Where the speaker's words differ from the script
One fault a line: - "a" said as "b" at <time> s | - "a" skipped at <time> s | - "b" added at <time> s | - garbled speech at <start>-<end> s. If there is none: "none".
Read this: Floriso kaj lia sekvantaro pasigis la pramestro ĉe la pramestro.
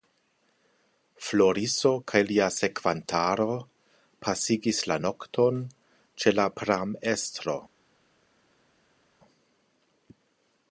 - "pramestro" said as "nokton" at 5.1 s